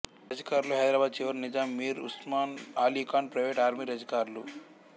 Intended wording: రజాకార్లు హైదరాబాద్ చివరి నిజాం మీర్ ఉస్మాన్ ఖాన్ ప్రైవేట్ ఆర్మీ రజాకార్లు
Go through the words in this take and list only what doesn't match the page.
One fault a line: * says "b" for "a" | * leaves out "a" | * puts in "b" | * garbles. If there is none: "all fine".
* puts in "అలీ"